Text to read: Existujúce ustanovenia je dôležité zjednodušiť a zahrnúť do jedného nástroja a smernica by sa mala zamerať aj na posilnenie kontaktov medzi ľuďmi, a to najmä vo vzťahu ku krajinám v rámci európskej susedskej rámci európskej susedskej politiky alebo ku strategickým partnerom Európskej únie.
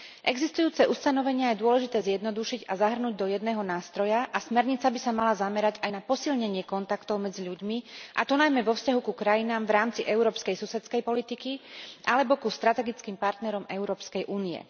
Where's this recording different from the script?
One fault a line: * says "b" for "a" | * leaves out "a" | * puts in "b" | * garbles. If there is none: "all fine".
* leaves out "rámci európskej susedskej"